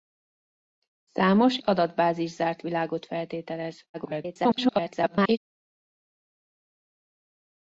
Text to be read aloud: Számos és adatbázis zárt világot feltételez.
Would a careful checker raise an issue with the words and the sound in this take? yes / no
yes